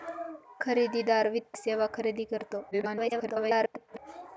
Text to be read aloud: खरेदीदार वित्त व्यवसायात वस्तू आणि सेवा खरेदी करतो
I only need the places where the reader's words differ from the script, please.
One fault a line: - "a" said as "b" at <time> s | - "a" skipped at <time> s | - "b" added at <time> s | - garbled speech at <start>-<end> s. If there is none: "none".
- "व्यवसायात वस्तू आणि" skipped at 1.6 s
- garbled speech at 2.7-4.0 s